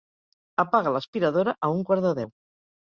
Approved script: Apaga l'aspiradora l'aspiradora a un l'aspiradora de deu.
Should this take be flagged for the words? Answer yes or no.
yes